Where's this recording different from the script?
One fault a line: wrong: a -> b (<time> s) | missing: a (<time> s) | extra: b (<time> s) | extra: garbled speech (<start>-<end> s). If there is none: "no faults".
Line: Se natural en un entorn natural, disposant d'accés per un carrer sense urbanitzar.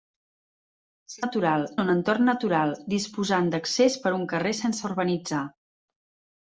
no faults